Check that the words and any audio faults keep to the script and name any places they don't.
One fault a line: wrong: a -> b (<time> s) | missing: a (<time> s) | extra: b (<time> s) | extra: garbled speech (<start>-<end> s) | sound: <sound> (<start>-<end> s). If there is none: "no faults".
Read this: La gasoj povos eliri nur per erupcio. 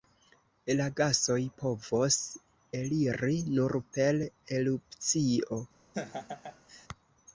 sound: laugh (5.9-6.9 s)